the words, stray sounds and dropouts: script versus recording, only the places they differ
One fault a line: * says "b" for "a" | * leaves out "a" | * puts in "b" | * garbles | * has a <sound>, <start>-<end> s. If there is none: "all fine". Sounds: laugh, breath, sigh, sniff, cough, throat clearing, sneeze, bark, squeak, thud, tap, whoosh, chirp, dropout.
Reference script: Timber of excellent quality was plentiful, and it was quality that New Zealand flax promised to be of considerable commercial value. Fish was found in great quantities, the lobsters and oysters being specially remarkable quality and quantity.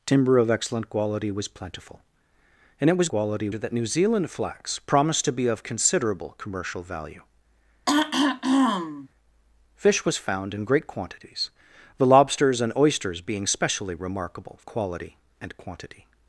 * has a throat clearing, 7.9-9.1 s